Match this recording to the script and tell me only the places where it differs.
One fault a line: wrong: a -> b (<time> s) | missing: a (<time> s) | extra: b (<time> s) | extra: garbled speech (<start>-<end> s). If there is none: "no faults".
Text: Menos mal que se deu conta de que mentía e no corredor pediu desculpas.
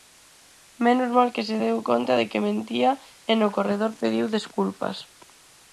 no faults